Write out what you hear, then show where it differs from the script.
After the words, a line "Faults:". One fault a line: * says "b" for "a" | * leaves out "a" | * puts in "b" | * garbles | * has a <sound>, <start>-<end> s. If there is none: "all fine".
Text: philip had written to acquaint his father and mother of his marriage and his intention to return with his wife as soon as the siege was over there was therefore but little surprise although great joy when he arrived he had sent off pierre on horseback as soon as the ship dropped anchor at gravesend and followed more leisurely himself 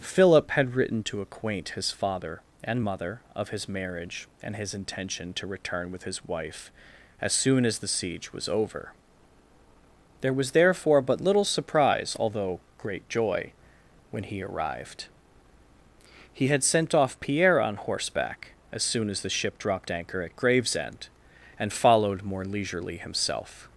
philip had written to acquaint his father and mother of his marriage and his intention to return with his wife as soon as the siege was over there was therefore but little surprise although great joy when he arrived he had sent off pierre on horseback as soon as the ship dropped anchor at gravesend and followed more leisurely himself
Faults:
all fine